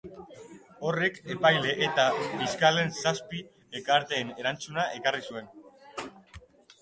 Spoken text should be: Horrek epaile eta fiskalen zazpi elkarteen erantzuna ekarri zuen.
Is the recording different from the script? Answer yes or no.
no